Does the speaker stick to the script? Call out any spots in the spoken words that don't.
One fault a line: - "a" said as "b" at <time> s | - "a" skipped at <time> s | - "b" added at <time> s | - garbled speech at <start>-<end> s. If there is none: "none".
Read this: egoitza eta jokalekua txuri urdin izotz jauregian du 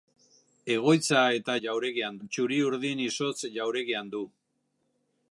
- "jokalekua" said as "jauregian" at 1.7 s